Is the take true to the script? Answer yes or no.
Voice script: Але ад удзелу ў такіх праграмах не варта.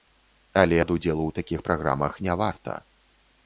yes